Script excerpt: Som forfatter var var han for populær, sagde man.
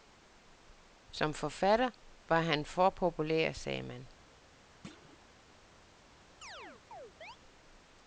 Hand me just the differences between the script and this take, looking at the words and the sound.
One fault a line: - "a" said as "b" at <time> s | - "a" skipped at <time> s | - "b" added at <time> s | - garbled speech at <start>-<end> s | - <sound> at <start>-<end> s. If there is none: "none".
- "var" skipped at 2.4 s
- thud at 4.8-5.2 s
- chirp at 6.4-7.4 s